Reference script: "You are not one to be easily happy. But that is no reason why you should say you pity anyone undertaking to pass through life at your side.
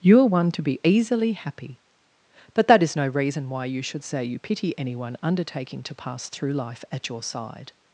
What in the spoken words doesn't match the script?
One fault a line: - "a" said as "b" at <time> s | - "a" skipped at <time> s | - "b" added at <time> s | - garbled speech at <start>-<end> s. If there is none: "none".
- "not" skipped at 0.2 s